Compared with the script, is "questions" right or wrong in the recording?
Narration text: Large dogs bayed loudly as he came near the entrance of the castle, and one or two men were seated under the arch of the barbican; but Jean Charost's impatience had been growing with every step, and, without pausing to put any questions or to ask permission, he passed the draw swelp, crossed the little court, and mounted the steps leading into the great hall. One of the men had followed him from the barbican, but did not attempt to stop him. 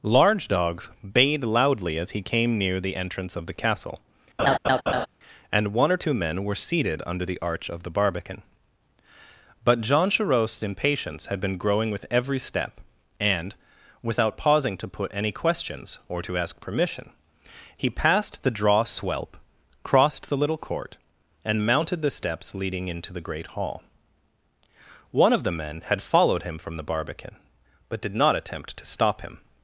right